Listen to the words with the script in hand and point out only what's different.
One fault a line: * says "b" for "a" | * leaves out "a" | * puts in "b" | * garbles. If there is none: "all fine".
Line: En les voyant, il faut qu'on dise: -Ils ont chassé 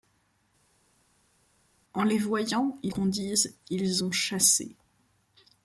* leaves out "faut"